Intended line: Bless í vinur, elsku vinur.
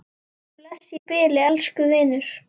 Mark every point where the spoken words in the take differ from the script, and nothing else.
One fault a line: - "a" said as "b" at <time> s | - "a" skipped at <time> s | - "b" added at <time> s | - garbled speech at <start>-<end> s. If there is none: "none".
- "vinur" said as "bili" at 1.1 s